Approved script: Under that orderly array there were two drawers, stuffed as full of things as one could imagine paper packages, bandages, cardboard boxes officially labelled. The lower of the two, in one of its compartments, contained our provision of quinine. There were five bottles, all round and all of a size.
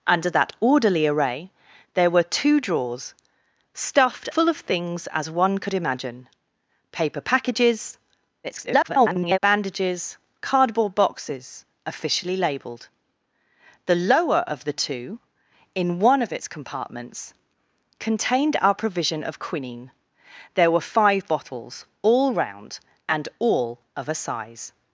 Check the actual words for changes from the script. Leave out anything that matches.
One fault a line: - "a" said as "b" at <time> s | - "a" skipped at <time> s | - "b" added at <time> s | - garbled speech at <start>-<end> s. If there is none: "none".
- "as" skipped at 4.3 s
- garbled speech at 8.4-9.4 s